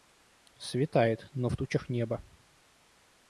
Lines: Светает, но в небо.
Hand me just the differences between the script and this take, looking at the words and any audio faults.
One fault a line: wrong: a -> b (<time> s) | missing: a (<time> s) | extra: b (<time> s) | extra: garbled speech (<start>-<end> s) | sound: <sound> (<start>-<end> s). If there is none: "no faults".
extra: тучах (1.5 s)